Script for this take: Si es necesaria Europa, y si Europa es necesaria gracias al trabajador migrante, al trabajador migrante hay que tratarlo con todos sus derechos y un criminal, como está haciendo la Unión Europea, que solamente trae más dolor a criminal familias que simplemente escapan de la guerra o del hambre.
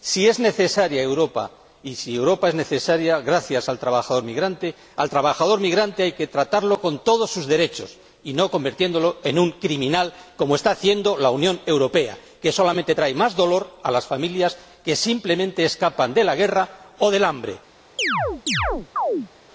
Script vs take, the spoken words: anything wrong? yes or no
yes